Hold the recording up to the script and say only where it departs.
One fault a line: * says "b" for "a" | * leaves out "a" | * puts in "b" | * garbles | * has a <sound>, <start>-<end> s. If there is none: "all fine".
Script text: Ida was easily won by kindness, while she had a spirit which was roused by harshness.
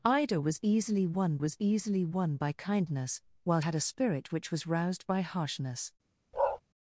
* puts in "was easily won"
* leaves out "she"
* has a bark, 6.3-6.6 s